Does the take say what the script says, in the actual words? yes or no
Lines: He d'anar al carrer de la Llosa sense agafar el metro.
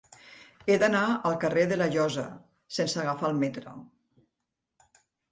yes